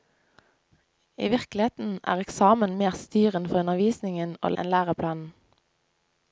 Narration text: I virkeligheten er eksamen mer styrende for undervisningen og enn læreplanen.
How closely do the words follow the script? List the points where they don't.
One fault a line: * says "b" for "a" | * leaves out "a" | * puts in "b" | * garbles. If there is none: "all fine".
all fine